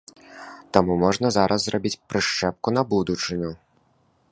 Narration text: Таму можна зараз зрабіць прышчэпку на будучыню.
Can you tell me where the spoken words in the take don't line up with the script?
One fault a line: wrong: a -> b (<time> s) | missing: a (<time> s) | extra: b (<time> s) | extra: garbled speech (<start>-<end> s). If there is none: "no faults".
no faults